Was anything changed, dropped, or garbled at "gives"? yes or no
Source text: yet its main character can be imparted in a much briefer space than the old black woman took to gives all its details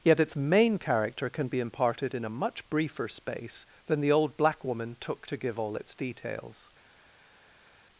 yes